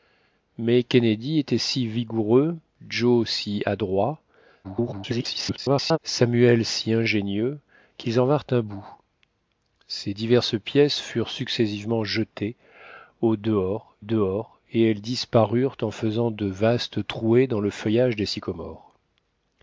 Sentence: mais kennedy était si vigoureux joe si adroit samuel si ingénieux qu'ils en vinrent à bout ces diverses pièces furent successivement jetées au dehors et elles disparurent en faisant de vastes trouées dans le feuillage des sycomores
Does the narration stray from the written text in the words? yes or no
yes